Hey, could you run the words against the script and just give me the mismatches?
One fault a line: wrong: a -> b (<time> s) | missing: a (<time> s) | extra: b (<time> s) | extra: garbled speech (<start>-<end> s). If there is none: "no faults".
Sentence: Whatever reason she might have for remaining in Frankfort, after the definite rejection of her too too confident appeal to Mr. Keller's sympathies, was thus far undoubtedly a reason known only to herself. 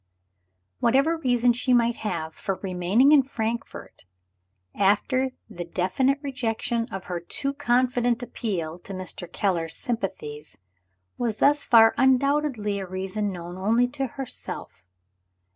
missing: too (7.5 s)